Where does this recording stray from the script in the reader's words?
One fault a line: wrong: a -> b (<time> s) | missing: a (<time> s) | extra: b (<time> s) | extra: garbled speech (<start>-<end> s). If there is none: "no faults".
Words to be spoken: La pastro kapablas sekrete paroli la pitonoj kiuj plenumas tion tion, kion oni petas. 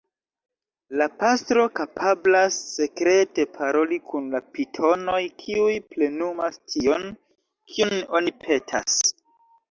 extra: kun (4.1 s)
missing: tion (7.0 s)